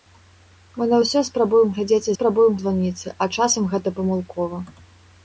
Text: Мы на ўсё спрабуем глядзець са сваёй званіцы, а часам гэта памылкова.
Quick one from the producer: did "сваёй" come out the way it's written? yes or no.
no